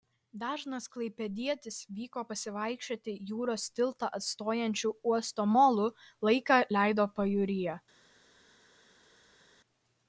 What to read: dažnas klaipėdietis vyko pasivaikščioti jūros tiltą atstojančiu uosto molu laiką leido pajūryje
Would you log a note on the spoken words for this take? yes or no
no